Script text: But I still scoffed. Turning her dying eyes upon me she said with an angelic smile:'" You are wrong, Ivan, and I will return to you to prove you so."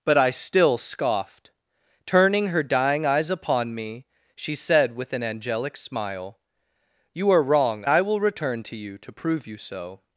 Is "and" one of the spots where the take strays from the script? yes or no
yes